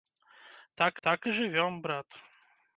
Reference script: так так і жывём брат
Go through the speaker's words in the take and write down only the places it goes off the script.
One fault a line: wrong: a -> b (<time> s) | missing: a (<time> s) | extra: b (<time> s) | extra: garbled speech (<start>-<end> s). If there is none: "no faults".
no faults